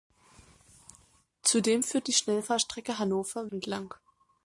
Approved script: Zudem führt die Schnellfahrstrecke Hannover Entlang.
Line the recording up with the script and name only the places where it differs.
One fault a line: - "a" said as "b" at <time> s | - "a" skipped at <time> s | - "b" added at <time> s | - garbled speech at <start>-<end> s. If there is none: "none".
none